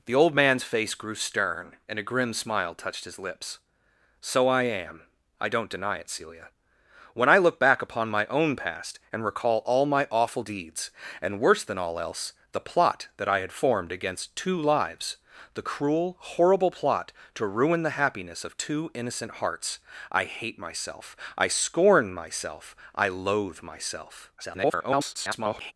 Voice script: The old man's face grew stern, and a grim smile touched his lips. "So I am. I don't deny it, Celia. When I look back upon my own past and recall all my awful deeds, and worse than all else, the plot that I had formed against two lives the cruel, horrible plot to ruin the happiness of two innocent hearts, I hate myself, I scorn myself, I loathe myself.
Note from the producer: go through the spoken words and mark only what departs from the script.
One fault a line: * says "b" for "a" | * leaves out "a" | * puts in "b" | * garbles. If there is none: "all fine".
* garbles